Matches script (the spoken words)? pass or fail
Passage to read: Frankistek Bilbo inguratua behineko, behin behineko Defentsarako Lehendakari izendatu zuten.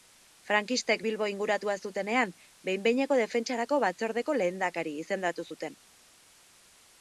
fail